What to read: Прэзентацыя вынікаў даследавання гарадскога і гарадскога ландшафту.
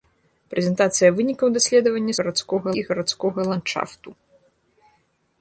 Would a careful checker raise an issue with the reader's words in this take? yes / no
no